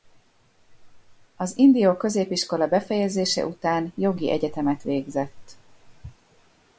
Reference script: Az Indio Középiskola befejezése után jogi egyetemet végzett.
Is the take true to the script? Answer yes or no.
yes